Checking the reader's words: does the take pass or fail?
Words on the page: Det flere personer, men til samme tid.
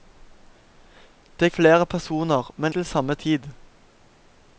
pass